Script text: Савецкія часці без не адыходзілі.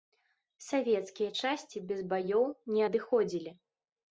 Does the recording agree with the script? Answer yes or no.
no